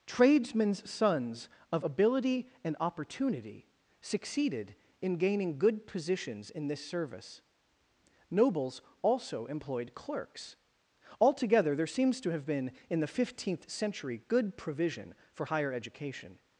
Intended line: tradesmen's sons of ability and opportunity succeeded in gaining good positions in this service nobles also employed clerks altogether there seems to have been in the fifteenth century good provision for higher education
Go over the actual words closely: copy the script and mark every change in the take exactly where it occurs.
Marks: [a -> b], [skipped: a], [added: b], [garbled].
tradesmen's sons of ability and opportunity succeeded in gaining good positions in this service nobles also employed clerks altogether there seems to have been in the fifteenth century good provision for higher education